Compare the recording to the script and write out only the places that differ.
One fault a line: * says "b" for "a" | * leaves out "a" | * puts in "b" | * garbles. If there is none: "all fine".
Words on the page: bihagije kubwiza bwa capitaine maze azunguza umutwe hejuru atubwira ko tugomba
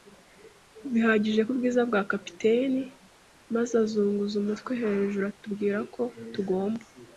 all fine